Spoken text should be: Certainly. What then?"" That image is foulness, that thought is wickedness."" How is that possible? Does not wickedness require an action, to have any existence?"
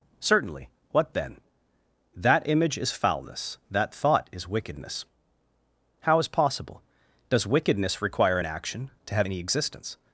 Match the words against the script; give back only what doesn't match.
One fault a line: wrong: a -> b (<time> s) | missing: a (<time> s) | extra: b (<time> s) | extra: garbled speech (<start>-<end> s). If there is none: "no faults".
missing: that (6.3 s)
missing: not (7.5 s)